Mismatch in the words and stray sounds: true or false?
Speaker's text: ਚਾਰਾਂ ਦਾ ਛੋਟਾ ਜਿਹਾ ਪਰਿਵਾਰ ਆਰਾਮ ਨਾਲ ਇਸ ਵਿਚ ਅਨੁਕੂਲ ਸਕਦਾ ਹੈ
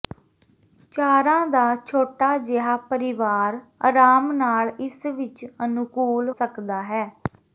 false